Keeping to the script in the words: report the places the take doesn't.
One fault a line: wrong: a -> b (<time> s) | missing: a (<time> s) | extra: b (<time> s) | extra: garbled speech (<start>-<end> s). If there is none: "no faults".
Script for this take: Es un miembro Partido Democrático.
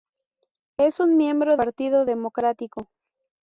no faults